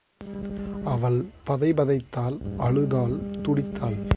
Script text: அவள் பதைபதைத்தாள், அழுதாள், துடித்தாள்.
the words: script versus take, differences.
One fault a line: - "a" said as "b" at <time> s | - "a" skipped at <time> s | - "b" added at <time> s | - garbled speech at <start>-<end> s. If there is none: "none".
none